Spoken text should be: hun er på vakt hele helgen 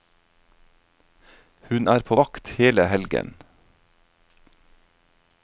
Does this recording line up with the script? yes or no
yes